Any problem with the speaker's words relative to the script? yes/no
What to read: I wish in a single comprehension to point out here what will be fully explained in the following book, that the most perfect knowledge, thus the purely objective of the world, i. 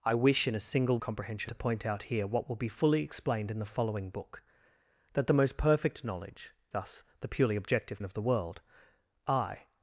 no